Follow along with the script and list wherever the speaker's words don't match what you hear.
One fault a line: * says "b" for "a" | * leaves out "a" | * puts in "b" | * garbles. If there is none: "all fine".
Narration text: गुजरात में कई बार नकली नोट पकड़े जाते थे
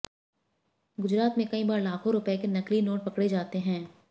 * puts in "लाखों रुपए के"
* says "हैं" for "थे"